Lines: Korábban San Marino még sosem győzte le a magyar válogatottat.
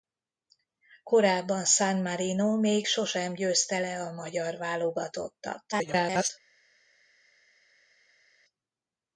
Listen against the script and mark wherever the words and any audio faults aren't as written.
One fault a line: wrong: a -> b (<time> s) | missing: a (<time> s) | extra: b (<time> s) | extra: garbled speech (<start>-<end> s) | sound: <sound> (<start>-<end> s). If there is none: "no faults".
extra: garbled speech (5.7-6.3 s)